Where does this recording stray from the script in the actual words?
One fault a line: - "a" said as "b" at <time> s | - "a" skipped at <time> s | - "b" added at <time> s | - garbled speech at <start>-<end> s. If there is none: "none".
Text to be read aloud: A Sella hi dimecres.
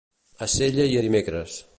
none